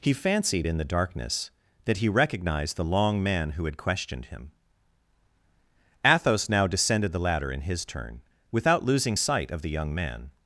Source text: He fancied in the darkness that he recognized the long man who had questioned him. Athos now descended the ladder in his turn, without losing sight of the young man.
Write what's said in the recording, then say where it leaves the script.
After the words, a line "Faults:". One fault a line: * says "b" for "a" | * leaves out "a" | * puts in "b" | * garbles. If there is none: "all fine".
He fancied in the darkness that he recognized the long man who had questioned him. Athos now descended the ladder in his turn, without losing sight of the young man.
Faults:
all fine